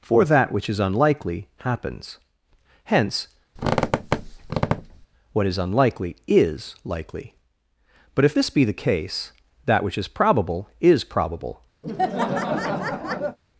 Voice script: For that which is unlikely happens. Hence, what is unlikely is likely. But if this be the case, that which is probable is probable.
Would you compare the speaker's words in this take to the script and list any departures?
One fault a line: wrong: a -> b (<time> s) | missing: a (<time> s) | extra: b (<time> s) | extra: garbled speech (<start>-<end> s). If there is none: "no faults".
no faults